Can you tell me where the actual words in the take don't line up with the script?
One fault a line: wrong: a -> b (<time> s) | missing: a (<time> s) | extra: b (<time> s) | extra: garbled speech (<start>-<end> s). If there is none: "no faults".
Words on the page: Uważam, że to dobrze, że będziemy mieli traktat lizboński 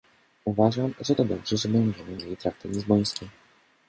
no faults